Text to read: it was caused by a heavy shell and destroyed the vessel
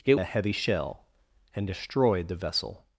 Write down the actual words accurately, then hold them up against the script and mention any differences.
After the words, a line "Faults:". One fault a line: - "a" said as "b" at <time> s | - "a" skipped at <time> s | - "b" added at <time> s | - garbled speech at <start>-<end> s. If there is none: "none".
it a heavy shell and destroyed the vessel
Faults:
- "was caused by" skipped at 0.1 s